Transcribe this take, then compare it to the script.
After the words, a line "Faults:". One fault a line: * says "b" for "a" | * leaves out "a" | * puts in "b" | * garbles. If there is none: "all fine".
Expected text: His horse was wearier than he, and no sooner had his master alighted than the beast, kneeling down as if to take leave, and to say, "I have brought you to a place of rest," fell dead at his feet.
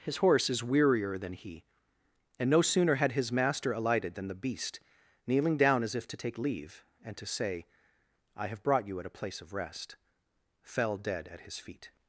His horse is wearier than he, and no sooner had his master alighted than the beast, kneeling down as if to take leave, and to say, "I have brought you at a place of rest," fell dead at his feet.
Faults:
* says "is" for "was"
* says "at" for "to"